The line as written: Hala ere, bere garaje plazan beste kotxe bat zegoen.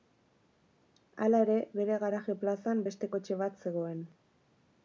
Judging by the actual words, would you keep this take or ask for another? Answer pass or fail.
pass